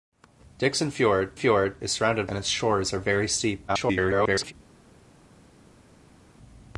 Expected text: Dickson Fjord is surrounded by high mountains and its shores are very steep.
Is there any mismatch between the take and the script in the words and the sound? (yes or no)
yes